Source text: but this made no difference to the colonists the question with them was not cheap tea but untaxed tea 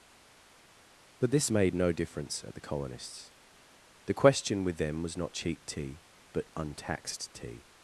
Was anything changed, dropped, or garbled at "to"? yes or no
yes